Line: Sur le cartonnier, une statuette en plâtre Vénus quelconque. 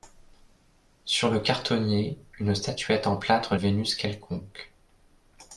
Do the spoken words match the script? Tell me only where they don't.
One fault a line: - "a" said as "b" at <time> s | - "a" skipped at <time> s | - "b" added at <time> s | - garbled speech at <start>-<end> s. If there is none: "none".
none